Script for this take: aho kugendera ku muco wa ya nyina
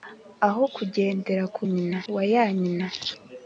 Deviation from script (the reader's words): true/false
true